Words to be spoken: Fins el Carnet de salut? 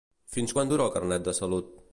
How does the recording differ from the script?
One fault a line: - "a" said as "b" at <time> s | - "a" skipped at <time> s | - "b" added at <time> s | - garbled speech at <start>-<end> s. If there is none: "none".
- "quan dura" added at 0.6 s